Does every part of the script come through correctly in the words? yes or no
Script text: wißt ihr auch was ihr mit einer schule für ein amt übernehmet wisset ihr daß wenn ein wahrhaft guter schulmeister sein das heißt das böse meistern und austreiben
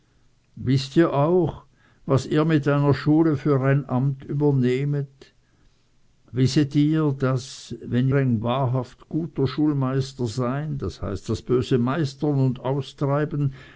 yes